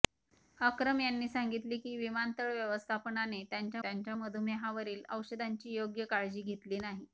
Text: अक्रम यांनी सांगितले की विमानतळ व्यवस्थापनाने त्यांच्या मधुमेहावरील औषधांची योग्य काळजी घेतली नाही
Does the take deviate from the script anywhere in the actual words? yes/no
yes